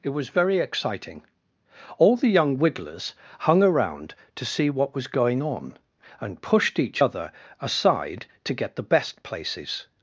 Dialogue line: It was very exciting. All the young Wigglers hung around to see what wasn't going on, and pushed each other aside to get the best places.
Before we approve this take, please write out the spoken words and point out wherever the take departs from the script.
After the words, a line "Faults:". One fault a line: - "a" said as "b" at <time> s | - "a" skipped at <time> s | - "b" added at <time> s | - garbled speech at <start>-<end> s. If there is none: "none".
It was very exciting. All the young Wigglers hung around to see what was going on, and pushed each other aside to get the best places.
Faults:
- "wasn't" said as "was" at 5.0 s